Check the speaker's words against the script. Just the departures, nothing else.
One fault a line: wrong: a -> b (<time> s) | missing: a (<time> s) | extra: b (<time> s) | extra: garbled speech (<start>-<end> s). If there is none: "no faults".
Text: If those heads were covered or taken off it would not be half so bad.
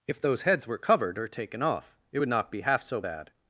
no faults